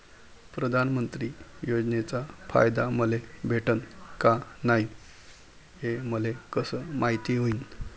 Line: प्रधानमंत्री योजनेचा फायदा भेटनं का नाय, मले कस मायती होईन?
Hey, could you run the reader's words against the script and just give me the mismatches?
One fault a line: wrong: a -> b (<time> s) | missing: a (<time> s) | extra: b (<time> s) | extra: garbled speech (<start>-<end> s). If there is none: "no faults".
extra: मले (2.9 s)
extra: हे (5.8 s)